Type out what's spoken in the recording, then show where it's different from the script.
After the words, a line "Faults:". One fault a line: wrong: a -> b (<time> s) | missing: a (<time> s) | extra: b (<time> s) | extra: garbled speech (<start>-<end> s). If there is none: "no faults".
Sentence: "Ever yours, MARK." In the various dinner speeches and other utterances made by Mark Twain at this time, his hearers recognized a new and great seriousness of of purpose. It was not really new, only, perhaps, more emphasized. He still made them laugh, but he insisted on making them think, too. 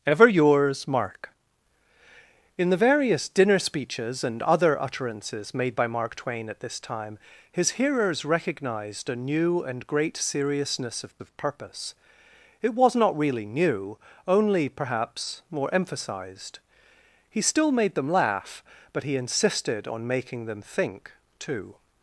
"Ever yours, MARK." In the various dinner speeches and other utterances made by Mark Twain at this time, his hearers recognized a new and great seriousness of of purpose. It was not really new, only, perhaps, more emphasized. He still made them laugh, but he insisted on making them think, too.
Faults:
no faults